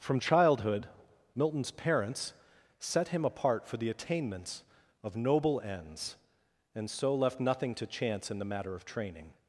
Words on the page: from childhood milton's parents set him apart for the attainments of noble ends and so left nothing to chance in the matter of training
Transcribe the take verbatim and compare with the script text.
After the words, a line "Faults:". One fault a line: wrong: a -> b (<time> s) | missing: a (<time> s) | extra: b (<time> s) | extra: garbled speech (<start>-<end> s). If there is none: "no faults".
from childhood milton's parents set him apart for the attainments of noble ends and so left nothing to chance in the matter of training
Faults:
no faults